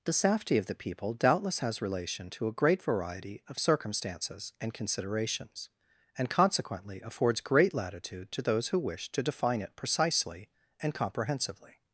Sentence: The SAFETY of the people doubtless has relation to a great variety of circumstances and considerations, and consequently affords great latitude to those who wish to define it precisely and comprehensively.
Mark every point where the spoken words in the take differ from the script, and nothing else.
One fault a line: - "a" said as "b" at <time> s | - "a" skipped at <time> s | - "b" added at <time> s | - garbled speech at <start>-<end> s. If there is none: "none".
none